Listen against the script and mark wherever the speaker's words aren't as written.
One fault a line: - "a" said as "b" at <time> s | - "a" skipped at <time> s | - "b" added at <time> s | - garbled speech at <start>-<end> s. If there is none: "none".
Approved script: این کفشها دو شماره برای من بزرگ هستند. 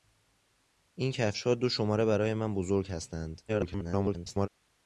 - garbled speech at 3.5-4.5 s